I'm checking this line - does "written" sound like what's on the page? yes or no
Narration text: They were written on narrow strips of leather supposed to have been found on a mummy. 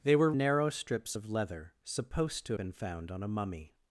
no